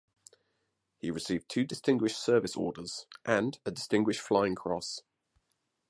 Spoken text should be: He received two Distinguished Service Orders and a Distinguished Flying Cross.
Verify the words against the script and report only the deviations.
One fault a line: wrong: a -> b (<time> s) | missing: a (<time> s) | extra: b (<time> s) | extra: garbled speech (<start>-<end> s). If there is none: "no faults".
no faults